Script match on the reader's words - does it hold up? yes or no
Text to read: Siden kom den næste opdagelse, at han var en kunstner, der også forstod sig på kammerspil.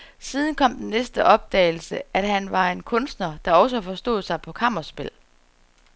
yes